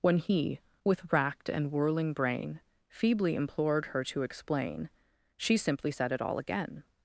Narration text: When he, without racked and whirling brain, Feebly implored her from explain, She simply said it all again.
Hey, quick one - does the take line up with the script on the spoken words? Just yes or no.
no